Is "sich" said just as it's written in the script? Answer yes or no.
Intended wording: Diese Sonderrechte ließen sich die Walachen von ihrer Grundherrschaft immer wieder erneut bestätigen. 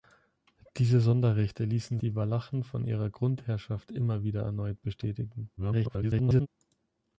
no